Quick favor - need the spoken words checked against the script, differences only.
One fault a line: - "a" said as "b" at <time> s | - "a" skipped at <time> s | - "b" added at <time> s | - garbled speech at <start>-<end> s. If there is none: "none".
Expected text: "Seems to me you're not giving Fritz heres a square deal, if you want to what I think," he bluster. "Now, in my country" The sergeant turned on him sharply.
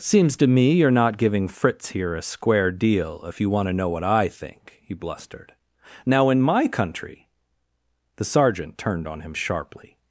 - "heres" said as "here" at 1.9 s
- "know" added at 3.7 s
- "bluster" said as "blustered" at 5.0 s